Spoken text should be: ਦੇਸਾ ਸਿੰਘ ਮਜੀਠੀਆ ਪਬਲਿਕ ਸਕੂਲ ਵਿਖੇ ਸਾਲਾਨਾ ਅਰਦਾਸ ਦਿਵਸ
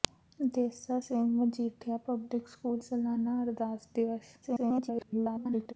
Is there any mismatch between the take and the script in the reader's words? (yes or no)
yes